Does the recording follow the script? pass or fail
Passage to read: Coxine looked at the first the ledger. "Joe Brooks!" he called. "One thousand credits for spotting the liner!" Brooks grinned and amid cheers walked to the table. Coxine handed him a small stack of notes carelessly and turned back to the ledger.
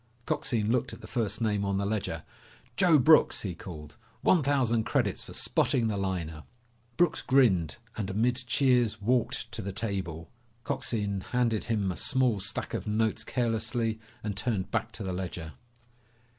fail